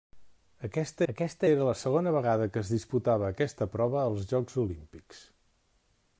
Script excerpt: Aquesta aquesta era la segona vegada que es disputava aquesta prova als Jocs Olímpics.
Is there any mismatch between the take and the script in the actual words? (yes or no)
no